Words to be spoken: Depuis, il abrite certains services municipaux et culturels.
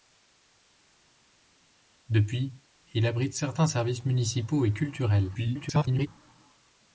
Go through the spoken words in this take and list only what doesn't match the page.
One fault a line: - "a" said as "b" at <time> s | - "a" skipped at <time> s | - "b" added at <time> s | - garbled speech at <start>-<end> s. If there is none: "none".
- garbled speech at 5.3-6.1 s